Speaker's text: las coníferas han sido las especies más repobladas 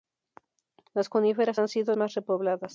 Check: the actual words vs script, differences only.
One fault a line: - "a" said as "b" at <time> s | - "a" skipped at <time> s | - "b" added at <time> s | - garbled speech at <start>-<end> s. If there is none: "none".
- "las especies" skipped at 1.9 s